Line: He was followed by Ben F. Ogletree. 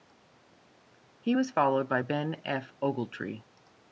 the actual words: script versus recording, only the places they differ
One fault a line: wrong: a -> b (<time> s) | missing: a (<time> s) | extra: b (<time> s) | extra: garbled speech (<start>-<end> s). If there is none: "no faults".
no faults